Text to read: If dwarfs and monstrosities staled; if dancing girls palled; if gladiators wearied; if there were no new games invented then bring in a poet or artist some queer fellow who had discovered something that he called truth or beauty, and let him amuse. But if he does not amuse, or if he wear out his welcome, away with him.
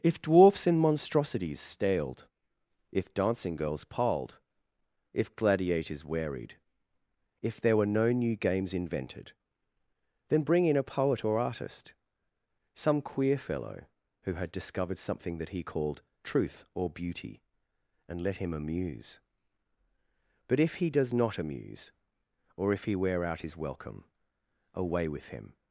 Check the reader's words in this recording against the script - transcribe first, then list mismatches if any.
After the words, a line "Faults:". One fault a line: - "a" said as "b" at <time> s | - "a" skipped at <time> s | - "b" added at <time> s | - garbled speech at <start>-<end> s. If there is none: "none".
If dwarfs and monstrosities staled; if dancing girls palled; if gladiators wearied; if there were no new games invented then bring in a poet or artist some queer fellow who had discovered something that he called truth or beauty, and let him amuse. But if he does not amuse, or if he wear out his welcome, away with him.
Faults:
none